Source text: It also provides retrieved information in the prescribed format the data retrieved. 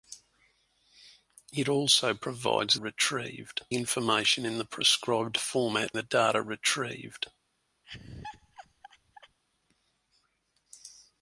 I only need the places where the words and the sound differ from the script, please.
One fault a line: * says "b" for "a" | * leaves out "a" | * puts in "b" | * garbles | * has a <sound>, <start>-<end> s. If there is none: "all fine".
* has a laugh, 7.8-9.4 s